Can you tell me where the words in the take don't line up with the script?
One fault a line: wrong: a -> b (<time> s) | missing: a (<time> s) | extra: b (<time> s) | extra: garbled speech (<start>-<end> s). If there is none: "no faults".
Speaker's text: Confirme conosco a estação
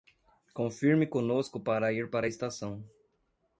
extra: para ir para (1.6 s)